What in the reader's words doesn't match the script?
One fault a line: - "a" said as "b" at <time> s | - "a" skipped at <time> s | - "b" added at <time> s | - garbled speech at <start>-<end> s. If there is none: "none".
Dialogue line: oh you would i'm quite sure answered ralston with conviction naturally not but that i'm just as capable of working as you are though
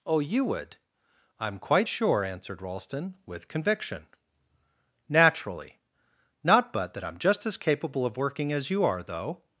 none